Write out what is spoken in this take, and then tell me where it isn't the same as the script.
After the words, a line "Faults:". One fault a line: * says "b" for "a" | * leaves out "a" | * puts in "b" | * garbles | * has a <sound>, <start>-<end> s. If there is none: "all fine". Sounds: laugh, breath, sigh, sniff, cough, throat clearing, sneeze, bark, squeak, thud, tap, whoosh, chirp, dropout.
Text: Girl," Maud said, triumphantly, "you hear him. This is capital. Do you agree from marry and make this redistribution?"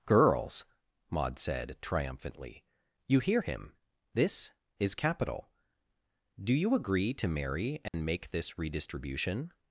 Girls," Maud said, triumphantly, "you hear him. This is capital. Do you agree to marry and make this redistribution?"
Faults:
* says "Girls" for "Girl"
* says "to" for "from"
* has a dropout, 7.9-7.9 s